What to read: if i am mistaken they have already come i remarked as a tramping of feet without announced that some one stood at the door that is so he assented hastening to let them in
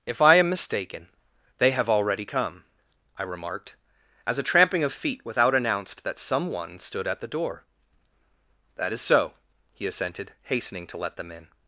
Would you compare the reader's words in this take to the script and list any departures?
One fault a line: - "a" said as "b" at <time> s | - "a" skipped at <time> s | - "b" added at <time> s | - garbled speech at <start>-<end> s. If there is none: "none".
none